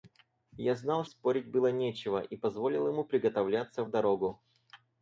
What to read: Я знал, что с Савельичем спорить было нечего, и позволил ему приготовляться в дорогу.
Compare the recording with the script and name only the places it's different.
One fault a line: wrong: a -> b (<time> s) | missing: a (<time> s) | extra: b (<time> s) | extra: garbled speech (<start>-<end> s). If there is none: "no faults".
missing: что с Савельичем (1.1 s)